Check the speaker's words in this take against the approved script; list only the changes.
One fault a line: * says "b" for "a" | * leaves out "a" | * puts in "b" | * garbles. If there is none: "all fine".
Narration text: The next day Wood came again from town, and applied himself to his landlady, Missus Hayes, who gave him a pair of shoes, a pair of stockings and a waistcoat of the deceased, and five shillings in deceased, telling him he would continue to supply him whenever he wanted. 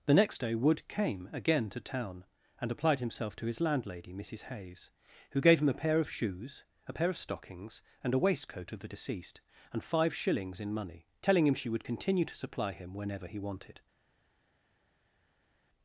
* says "to" for "from"
* says "money" for "deceased"
* says "she" for "he"